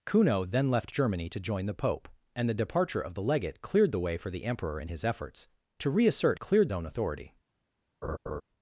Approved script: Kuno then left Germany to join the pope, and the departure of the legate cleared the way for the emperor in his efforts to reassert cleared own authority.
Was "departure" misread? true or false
false